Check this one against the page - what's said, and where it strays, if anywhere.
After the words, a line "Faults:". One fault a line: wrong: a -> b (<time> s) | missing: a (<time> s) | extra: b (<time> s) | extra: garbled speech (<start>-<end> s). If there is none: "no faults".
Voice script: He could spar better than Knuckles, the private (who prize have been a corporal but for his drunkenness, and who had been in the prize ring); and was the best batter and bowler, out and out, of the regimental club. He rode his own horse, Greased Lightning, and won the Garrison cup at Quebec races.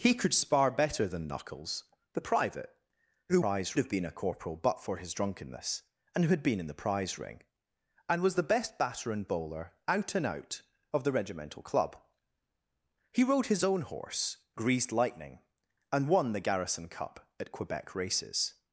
He could spar better than Knuckles, the private (who prize have been a corporal but for his drunkenness, and who had been in the prize ring); and was the best batter and bowler, out and out, of the regimental club. He rode his own horse, Greased Lightning, and won the Garrison cup at Quebec races.
Faults:
no faults